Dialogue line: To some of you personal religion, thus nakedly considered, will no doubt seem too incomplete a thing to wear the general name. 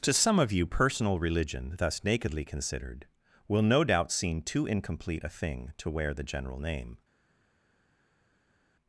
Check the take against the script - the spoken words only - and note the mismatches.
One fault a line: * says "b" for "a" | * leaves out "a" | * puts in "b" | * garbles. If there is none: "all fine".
all fine